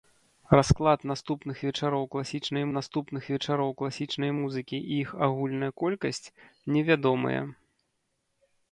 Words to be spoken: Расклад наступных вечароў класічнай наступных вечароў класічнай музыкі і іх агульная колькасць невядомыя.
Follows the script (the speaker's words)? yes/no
yes